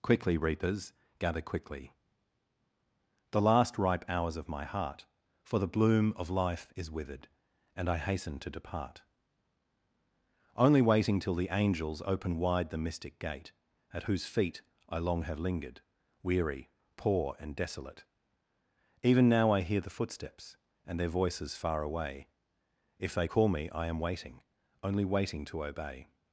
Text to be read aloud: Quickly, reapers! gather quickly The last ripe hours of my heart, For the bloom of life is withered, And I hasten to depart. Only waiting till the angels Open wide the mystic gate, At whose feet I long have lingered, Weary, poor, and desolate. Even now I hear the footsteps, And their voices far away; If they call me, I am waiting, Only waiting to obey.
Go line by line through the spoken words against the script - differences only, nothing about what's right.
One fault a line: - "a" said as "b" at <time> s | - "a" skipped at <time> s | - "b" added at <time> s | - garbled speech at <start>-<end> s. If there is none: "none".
none